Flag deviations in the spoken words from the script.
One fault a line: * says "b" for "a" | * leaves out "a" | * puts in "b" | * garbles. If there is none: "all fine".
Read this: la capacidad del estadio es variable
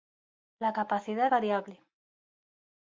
* leaves out "del estadio es"